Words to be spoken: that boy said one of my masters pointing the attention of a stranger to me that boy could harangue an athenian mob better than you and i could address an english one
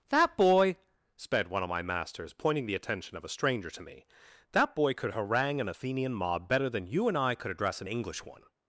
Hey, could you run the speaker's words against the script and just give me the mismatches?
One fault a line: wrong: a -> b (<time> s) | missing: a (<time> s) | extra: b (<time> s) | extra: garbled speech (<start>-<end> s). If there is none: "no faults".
wrong: said -> sped (1.1 s)